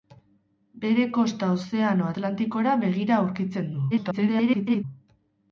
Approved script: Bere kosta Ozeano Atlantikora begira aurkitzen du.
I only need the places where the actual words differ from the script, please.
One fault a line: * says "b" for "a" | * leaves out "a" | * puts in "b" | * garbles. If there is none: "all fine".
* garbles